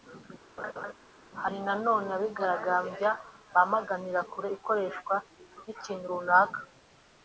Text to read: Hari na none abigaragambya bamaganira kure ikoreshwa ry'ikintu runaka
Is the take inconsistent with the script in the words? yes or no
no